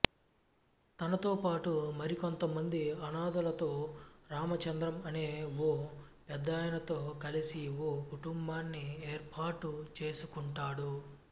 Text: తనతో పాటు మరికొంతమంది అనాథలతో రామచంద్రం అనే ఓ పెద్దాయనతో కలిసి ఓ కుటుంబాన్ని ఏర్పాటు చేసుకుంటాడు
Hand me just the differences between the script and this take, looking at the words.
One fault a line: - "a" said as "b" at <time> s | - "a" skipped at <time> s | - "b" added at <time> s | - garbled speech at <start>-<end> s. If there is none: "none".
none